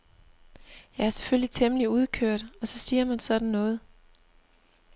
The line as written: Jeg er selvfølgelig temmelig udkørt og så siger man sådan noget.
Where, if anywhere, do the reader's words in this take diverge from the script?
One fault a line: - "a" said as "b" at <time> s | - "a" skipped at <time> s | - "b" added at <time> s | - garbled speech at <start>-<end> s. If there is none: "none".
none